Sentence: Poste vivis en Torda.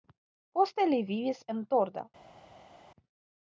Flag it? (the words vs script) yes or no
yes